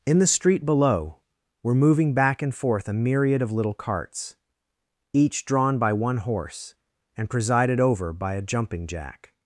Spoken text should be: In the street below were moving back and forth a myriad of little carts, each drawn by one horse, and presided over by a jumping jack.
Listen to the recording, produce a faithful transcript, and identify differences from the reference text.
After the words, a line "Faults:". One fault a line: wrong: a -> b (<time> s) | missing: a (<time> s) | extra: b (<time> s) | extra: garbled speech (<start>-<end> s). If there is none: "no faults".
In the street below were moving back and forth a myriad of little carts, each drawn by one horse, and presided over by a jumping jack.
Faults:
no faults